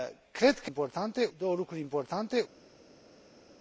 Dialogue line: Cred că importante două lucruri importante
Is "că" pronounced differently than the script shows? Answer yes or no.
no